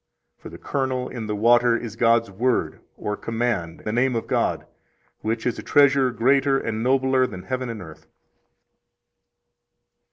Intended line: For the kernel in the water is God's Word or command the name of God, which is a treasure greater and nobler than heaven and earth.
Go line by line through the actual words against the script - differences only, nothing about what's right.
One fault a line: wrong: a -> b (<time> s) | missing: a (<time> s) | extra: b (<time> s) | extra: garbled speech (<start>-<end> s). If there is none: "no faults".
no faults